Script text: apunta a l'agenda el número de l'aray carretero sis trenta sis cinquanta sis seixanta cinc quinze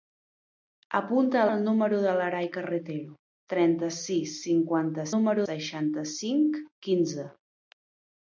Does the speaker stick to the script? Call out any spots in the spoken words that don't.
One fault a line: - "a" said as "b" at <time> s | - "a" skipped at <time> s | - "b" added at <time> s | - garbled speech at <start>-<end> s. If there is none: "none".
- "l'agenda" skipped at 1.5 s
- "sis" skipped at 3.1 s
- "sis" said as "número" at 5.1 s